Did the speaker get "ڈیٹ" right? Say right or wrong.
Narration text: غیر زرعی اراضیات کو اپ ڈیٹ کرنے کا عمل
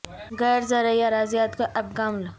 wrong